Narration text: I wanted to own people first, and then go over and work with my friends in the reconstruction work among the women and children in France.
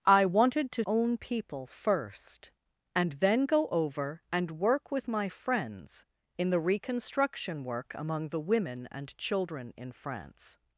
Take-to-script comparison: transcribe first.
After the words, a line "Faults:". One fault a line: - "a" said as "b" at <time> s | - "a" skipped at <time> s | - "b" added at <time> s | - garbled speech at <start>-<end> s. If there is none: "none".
I wanted to own people first, and then go over and work with my friends in the reconstruction work among the women and children in France.
Faults:
none